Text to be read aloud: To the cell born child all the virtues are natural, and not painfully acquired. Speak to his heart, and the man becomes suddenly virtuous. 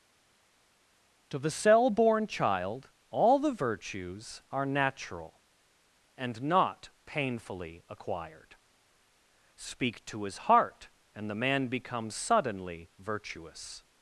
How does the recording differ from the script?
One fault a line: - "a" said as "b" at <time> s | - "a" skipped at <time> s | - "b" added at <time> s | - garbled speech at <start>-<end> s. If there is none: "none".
none